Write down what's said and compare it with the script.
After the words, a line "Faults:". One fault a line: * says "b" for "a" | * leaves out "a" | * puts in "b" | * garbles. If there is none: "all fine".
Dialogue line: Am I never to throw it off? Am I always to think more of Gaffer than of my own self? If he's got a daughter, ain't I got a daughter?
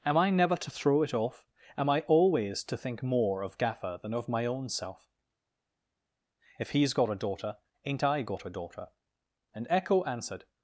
Am I never to throw it off? Am I always to think more of Gaffer than of my own self? If he's got a daughter, ain't I got a daughter? 'And echo answered
Faults:
* puts in "And echo answered"